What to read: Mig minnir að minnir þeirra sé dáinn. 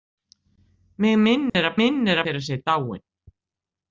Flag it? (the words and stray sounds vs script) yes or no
yes